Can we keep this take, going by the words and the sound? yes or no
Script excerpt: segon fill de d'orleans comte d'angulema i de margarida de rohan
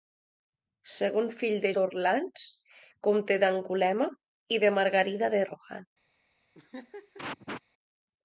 no